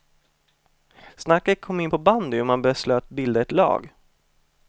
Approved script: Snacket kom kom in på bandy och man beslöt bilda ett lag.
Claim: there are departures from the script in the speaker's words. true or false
true